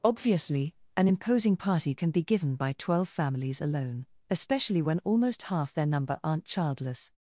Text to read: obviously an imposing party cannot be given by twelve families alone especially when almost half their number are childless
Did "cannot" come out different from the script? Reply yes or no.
yes